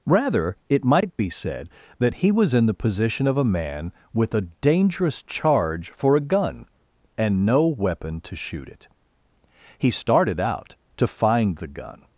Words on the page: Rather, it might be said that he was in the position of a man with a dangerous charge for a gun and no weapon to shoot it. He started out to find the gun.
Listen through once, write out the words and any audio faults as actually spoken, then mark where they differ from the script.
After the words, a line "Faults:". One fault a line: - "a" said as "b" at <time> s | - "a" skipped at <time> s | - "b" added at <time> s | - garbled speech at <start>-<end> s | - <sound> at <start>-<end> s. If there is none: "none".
Rather, it might be said that he was in the position of a man with a dangerous charge for a gun and no weapon to shoot it. He started out to find the gun.
Faults:
none